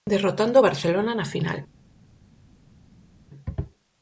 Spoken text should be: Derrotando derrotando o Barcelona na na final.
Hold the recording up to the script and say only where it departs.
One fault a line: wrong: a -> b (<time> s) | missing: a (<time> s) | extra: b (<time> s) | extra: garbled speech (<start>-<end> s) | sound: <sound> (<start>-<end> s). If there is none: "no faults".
missing: derrotando (0.6 s)
missing: na (1.3 s)